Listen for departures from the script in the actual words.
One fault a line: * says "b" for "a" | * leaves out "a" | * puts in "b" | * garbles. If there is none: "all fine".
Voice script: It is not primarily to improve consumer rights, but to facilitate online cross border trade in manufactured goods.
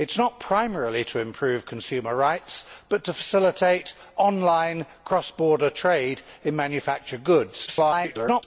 * garbles